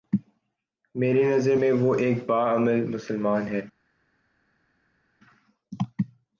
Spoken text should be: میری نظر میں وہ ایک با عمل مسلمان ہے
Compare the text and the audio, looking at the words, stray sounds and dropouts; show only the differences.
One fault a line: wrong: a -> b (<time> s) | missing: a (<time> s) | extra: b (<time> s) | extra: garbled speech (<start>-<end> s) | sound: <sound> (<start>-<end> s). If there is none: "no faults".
no faults